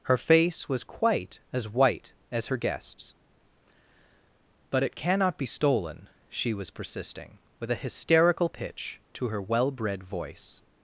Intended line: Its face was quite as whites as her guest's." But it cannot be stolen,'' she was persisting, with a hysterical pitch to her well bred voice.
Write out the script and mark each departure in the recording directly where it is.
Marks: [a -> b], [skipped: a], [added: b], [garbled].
[Its -> Her] face was quite as [whites -> white] as her guest's." But it cannot be stolen,'' she was persisting, with a hysterical pitch to her well bred voice.